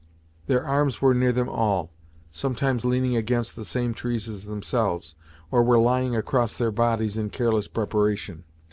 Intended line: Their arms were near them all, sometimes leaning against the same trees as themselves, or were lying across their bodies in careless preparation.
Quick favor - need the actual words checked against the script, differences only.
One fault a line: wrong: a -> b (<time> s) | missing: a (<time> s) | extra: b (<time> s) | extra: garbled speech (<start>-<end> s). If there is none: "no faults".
no faults